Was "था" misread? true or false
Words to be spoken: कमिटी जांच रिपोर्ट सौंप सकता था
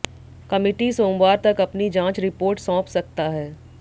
true